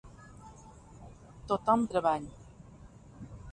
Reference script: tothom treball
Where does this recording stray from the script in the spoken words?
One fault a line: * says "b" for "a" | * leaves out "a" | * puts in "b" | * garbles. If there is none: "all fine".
all fine